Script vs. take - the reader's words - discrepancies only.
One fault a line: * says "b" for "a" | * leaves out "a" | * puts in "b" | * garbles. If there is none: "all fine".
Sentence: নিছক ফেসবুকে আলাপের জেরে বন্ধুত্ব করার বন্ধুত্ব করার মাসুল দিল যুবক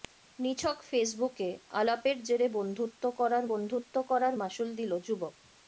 all fine